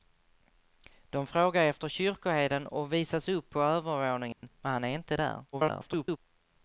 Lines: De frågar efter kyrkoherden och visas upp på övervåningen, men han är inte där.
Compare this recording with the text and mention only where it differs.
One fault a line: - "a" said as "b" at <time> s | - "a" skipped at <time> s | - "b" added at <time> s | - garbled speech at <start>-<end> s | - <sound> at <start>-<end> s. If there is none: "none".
- dropout at 4.3-4.4 s
- garbled speech at 5.5-6.2 s